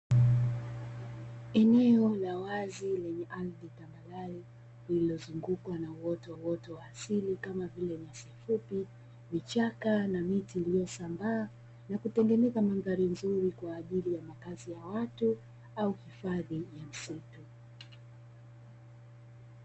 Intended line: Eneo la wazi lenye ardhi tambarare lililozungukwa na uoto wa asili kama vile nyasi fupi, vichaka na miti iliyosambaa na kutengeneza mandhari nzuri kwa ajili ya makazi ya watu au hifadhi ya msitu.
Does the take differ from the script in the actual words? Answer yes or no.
yes